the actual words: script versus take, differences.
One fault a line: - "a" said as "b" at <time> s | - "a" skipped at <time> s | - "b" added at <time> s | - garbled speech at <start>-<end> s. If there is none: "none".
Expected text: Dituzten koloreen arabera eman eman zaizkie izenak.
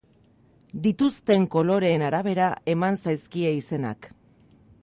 - "eman" skipped at 3.0 s